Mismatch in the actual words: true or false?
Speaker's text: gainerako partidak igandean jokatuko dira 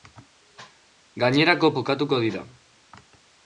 true